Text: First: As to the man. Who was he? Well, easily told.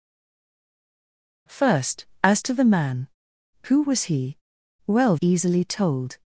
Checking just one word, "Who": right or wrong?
right